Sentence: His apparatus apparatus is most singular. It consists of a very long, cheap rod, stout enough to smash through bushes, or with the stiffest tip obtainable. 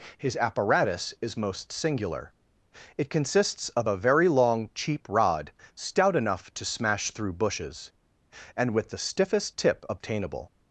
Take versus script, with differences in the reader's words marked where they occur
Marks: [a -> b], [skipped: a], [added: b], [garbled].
His apparatus [skipped: apparatus] is most singular. It consists of a very long, cheap rod, stout enough to smash through bushes, [or -> and] with the stiffest tip obtainable.